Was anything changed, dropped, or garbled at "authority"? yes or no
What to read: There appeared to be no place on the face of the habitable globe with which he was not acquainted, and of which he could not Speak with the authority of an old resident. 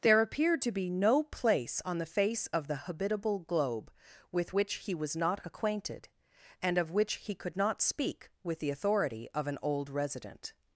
no